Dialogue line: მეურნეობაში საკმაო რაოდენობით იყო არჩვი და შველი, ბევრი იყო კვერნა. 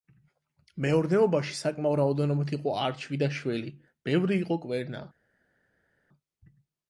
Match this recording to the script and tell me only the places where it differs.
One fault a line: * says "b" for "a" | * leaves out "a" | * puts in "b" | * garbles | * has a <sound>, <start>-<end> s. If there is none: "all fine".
all fine